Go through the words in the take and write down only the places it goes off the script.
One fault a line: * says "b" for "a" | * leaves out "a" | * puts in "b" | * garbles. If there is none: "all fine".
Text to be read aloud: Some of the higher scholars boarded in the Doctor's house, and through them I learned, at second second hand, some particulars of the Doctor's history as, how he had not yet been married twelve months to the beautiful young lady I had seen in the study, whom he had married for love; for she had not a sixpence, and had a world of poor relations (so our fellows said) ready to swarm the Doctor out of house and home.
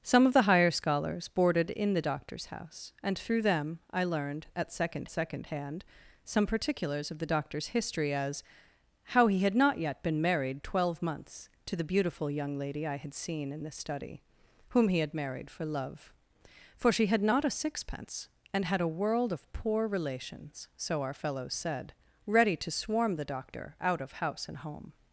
all fine